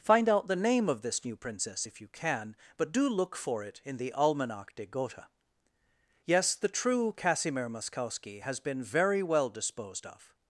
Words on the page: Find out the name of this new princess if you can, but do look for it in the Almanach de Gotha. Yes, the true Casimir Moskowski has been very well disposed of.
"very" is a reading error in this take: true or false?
false